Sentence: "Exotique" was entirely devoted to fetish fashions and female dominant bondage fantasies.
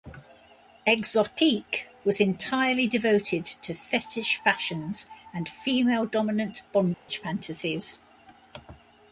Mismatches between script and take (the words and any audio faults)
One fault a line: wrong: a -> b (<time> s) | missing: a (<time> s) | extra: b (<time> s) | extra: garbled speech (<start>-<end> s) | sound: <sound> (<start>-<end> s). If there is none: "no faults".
sound: dropout (6.9-7.1 s)